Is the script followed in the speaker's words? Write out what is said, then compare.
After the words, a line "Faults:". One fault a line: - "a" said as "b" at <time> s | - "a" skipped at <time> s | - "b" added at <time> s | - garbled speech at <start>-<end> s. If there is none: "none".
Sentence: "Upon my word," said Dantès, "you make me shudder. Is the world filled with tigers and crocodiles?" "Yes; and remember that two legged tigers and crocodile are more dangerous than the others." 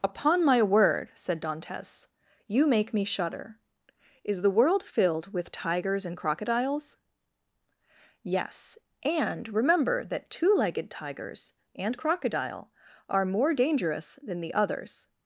"Upon my word," said Dantès, "you make me shudder. Is the world filled with tigers and crocodiles?" "Yes; and remember that two legged tigers and crocodile are more dangerous than the others."
Faults:
none